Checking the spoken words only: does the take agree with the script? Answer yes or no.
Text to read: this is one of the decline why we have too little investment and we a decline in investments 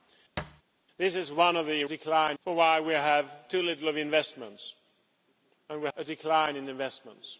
yes